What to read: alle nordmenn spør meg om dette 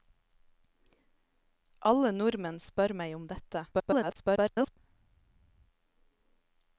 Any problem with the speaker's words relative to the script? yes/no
yes